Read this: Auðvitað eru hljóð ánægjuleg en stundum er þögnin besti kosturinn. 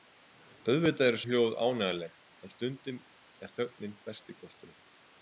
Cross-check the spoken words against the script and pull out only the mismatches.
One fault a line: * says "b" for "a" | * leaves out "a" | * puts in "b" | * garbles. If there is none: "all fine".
all fine